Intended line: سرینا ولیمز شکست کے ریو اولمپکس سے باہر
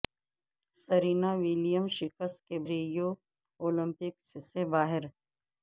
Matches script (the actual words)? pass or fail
pass